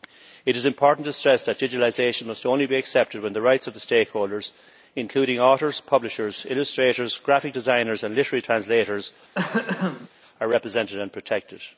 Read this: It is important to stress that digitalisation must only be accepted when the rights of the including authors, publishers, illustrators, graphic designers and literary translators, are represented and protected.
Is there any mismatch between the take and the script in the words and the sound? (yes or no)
yes